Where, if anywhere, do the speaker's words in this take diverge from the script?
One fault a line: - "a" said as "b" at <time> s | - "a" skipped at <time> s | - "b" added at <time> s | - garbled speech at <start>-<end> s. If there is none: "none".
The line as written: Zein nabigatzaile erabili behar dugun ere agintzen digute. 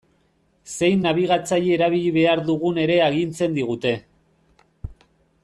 none